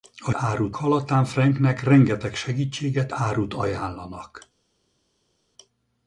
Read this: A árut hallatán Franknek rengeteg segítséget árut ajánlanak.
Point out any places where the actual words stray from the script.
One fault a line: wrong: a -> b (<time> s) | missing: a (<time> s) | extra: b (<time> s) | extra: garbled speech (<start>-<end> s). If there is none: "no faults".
no faults